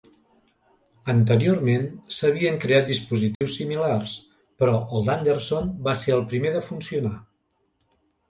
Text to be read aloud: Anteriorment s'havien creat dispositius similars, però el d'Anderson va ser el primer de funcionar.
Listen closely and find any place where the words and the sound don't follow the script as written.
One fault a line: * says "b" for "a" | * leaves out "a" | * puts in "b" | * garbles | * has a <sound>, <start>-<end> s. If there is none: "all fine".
* has a dropout, 3.3-3.4 s